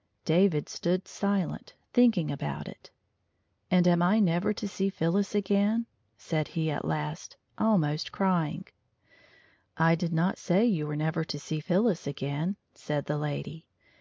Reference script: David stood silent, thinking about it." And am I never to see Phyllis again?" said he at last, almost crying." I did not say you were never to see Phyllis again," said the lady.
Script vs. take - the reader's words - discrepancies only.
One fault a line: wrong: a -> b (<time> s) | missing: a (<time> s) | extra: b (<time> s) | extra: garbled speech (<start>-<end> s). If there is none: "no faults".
no faults